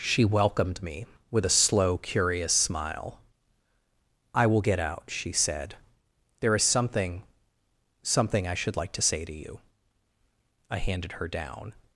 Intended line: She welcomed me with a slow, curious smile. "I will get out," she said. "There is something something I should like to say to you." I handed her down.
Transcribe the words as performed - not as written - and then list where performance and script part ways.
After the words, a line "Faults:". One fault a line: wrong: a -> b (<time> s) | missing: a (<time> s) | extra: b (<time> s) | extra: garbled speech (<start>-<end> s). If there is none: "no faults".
She welcomed me with a slow, curious smile. "I will get out," she said. "There is something something I should like to say to you." I handed her down.
Faults:
no faults